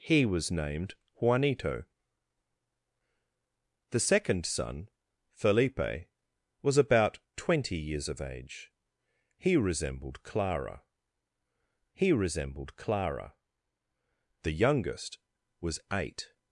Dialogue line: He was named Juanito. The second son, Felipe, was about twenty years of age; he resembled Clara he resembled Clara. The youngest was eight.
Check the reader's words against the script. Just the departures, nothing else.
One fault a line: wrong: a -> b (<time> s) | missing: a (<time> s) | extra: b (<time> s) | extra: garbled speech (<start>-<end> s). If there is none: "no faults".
no faults